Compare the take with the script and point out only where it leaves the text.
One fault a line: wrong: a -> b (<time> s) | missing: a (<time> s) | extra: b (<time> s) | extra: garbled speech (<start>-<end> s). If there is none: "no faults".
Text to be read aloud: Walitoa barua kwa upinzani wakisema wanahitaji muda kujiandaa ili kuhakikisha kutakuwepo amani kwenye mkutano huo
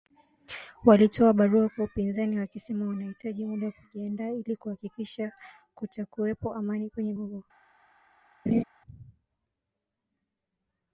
missing: mkutano (7.1 s)